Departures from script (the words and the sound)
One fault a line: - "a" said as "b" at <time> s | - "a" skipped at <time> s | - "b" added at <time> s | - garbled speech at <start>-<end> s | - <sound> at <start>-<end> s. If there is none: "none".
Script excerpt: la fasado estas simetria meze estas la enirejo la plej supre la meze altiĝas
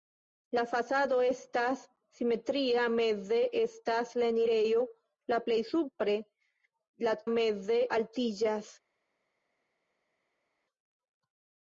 none